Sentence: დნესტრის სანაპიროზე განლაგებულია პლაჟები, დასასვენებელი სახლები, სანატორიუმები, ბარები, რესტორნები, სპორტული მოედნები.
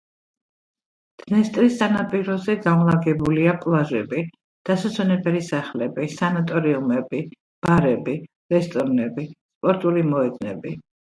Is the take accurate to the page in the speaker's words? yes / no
yes